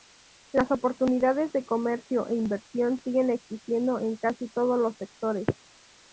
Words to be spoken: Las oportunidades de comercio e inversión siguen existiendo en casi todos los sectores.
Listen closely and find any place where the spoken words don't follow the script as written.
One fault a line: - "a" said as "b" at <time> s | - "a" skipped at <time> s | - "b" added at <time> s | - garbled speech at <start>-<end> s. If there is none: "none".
none